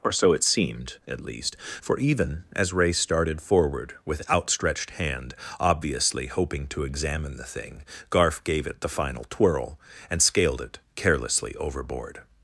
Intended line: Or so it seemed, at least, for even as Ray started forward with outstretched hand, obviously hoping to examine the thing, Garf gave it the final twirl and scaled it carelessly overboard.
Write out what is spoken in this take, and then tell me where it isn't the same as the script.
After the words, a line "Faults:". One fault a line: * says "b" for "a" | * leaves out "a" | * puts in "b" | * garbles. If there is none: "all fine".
Or so it seemed, at least, for even as Ray started forward with outstretched hand, obviously hoping to examine the thing, Garf gave it the final twirl and scaled it carelessly overboard.
Faults:
all fine